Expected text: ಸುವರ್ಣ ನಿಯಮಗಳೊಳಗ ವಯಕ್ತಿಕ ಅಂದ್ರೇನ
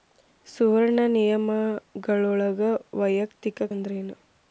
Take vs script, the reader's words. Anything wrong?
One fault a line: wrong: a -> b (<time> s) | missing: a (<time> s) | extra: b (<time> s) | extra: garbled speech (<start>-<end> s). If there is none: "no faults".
no faults